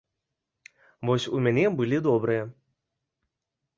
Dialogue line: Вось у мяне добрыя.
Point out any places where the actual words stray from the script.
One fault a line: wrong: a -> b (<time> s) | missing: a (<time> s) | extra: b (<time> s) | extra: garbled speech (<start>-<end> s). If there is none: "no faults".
extra: былі (1.8 s)